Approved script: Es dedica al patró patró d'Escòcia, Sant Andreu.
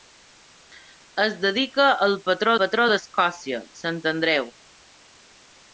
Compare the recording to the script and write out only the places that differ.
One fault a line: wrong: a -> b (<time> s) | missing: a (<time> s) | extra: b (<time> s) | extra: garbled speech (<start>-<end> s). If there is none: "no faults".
no faults